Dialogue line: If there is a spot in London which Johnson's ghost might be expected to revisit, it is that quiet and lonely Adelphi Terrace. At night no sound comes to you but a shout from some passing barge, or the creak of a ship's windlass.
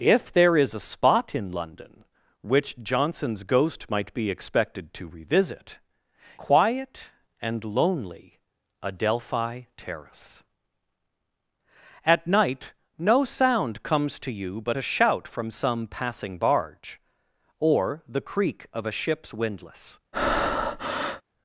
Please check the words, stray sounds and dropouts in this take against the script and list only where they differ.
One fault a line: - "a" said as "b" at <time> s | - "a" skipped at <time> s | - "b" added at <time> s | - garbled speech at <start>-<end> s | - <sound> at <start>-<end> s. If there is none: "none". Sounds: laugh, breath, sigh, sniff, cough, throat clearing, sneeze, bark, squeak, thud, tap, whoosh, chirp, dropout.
- "it is that" skipped at 5.8 s
- breath at 20.1-21.2 s